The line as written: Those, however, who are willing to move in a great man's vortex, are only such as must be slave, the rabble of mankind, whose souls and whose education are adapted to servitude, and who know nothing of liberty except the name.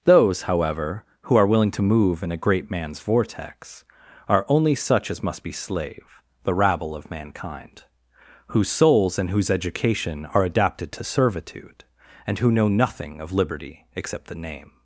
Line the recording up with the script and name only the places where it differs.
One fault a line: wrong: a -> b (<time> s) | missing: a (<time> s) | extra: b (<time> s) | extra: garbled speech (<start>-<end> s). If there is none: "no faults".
no faults